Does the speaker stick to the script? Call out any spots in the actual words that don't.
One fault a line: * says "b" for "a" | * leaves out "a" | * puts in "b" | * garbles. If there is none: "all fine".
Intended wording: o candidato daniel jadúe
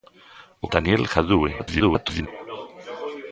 * leaves out "candidato"
* garbles